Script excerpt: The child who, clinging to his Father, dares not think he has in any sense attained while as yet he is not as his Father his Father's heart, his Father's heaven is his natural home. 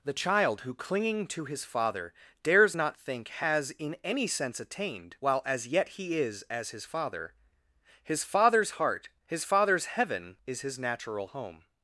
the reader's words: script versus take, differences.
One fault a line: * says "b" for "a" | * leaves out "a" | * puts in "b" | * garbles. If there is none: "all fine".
* leaves out "he"
* leaves out "not"